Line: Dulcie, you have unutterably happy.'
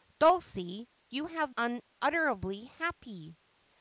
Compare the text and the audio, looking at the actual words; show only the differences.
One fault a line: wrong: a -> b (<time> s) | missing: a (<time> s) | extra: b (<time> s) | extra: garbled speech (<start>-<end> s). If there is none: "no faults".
no faults